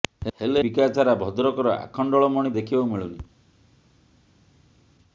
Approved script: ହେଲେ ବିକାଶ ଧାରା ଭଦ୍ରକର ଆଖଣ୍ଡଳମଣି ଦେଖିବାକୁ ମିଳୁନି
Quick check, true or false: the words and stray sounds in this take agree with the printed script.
true